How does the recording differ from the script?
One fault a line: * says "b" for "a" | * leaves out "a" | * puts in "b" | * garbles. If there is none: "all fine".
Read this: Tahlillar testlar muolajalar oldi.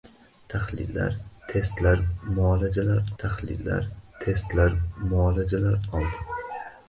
* puts in "tahlillar testlar muolajalar"